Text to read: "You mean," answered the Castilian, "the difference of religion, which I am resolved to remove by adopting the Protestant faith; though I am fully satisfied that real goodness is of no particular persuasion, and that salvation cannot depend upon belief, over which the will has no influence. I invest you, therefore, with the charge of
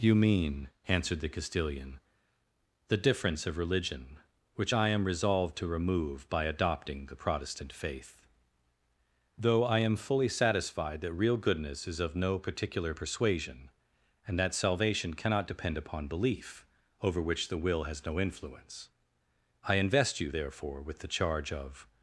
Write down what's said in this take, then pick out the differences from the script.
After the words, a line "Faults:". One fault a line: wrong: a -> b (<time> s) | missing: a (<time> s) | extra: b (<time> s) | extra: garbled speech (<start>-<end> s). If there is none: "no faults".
"You mean," answered the Castilian, "the difference of religion, which I am resolved to remove by adopting the Protestant faith; though I am fully satisfied that real goodness is of no particular persuasion, and that salvation cannot depend upon belief, over which the will has no influence. I invest you, therefore, with the charge of
Faults:
no faults